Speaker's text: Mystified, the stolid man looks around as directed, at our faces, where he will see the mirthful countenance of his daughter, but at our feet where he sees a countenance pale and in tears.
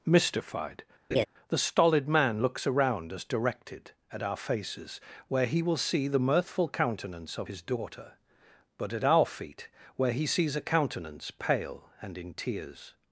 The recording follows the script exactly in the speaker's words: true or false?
true